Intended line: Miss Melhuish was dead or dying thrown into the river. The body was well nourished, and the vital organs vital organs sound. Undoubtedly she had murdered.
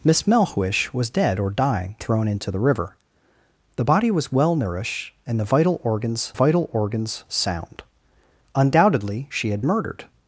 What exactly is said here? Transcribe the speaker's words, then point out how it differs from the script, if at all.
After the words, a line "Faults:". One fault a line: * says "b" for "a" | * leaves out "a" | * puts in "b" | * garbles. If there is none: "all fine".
Miss Melhuish was dead or dying thrown into the river. The body was well nourished, and the vital organs vital organs sound. Undoubtedly she had murdered.
Faults:
all fine